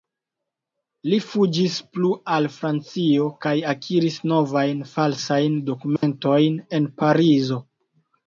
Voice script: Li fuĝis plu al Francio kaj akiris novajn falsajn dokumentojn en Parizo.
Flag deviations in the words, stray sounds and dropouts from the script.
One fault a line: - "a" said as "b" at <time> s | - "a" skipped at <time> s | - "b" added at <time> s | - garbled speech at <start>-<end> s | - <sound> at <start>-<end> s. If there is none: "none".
- dropout at 6.0-6.0 s